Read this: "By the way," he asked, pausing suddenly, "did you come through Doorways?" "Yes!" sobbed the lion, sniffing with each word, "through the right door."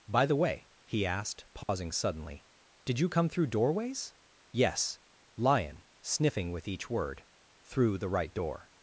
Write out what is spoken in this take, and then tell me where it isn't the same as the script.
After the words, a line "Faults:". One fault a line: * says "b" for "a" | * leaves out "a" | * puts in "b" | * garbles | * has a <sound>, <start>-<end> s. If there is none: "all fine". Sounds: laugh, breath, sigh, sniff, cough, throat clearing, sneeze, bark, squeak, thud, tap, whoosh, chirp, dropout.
"By the way," he asked, pausing suddenly, "did you come through Doorways?" "Yes!" lion, sniffing with each word, "through the right door."
Faults:
* has a dropout, 1.6-1.7 s
* leaves out "sobbed the"